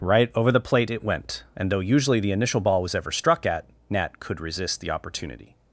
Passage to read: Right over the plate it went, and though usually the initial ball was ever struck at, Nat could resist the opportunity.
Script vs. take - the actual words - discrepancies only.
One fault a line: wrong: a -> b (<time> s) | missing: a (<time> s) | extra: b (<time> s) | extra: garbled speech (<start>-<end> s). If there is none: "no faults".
no faults